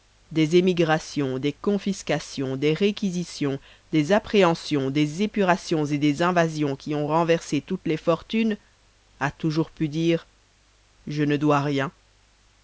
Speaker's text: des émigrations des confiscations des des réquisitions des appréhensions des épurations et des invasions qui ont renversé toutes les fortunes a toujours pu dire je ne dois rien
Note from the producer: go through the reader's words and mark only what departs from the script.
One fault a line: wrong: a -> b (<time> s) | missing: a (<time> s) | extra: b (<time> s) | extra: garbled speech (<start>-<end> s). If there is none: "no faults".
missing: des (2.7 s)